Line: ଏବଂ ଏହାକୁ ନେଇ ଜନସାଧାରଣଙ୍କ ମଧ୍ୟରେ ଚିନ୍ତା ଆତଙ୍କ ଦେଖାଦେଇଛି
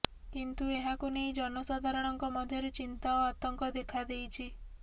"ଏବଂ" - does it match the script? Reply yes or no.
no